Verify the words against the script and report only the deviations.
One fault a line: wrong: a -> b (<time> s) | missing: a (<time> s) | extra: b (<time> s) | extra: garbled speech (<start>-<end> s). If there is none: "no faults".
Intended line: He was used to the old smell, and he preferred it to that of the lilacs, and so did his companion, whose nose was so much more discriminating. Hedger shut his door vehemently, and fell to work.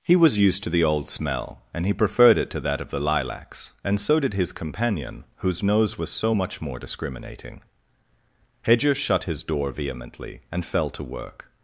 no faults